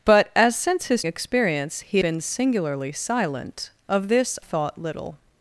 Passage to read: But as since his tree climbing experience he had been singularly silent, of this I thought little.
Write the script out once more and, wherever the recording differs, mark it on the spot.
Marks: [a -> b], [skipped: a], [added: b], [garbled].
But as since his [skipped: tree climbing] experience he [skipped: had] been singularly silent, of this [skipped: I] thought little.